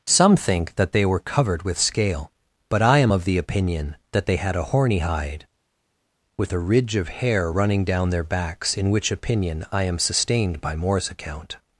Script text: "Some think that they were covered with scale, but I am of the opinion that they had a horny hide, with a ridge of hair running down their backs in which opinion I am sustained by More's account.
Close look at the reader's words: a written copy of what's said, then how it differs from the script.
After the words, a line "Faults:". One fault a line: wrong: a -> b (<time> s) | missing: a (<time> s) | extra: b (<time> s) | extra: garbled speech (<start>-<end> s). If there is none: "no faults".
"Some think that they were covered with scale, but I am of the opinion that they had a horny hide, with a ridge of hair running down their backs in which opinion I am sustained by More's account.
Faults:
no faults